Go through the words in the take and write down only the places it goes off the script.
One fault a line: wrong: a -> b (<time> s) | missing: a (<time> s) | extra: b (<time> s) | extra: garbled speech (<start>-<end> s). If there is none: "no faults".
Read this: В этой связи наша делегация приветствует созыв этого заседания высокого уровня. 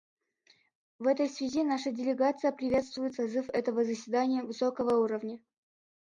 no faults